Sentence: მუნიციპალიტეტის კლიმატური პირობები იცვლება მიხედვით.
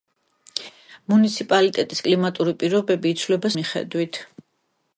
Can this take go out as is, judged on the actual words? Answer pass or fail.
pass